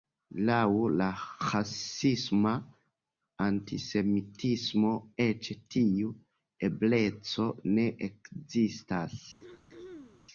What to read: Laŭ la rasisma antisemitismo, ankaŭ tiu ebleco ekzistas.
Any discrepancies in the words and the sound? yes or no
yes